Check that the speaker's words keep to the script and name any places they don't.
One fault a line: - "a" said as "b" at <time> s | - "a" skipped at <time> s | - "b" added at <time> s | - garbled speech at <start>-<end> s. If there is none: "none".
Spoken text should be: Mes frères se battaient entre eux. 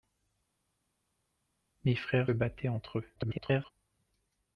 - "se" skipped at 2.3 s
- garbled speech at 3.2-3.7 s